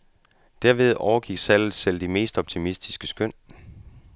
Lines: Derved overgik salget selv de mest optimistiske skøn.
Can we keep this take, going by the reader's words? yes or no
yes